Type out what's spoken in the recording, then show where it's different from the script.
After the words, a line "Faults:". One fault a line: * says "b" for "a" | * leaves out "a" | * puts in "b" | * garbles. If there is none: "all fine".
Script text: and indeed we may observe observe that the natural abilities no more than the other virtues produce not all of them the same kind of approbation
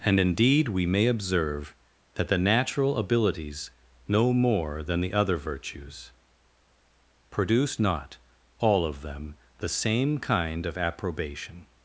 and indeed we may observe that the natural abilities no more than the other virtues produce not all of them the same kind of approbation
Faults:
* leaves out "observe"